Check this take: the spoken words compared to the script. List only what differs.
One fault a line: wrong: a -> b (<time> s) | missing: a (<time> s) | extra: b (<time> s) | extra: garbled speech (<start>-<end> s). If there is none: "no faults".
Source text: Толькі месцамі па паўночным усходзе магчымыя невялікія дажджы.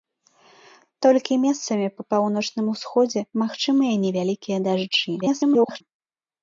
extra: garbled speech (5.2-5.8 s)